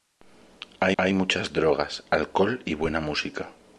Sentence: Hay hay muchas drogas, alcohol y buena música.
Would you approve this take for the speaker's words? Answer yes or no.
yes